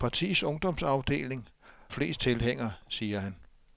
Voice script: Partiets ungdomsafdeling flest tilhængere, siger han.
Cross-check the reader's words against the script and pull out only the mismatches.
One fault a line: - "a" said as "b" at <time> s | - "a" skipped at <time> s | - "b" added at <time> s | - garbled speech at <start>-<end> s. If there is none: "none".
none